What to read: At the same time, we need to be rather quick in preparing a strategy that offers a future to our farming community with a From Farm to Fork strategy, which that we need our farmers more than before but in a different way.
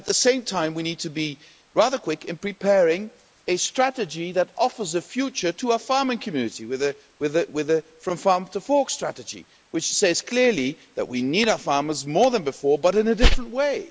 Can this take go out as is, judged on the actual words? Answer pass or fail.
fail